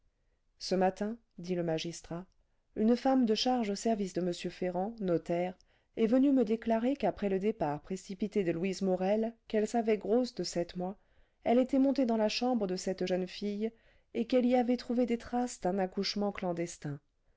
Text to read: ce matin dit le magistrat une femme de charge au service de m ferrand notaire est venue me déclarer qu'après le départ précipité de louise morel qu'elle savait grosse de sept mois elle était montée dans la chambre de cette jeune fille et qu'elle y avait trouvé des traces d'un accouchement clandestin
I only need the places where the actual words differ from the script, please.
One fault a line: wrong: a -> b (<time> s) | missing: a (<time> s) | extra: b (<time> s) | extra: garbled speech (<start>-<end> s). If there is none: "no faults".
no faults